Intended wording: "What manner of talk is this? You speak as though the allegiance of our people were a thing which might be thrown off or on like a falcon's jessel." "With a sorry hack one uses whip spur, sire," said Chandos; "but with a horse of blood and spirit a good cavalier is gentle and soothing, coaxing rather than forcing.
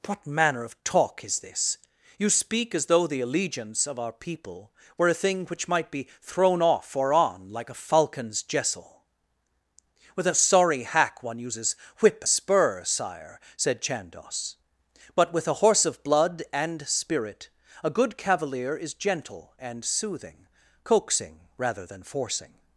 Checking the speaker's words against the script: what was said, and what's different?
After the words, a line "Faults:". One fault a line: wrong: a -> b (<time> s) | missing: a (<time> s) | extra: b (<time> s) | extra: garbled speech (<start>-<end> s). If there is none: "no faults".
"What manner of talk is this? You speak as though the allegiance of our people were a thing which might be thrown off or on like a falcon's jessel." "With a sorry hack one uses whip spur, sire," said Chandos; "but with a horse of blood and spirit a good cavalier is gentle and soothing, coaxing rather than forcing.
Faults:
no faults